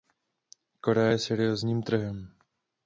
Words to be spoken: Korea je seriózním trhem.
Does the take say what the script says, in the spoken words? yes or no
yes